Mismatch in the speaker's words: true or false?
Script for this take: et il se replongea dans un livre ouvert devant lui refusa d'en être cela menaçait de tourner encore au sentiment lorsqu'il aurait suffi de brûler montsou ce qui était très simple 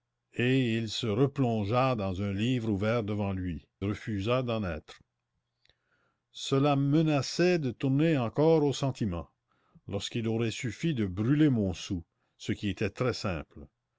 false